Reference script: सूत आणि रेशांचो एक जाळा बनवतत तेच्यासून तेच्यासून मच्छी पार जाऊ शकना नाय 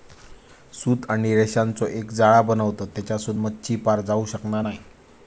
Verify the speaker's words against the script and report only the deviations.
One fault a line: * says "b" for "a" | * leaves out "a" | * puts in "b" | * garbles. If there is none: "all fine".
* leaves out "तेच्यासून"